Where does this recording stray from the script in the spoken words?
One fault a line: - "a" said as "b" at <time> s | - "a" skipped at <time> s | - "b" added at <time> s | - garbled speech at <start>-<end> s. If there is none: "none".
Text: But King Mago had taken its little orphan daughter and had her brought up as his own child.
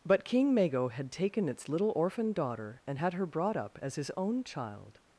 none